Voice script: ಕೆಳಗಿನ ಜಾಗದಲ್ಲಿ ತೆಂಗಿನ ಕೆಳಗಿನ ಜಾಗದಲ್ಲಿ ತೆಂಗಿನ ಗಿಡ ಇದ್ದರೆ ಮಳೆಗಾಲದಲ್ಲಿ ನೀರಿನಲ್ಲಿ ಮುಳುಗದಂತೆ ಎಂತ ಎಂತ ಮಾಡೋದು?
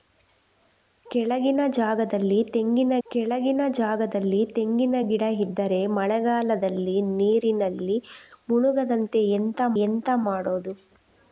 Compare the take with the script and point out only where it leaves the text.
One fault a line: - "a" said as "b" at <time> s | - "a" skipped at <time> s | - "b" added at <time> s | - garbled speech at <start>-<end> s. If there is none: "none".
none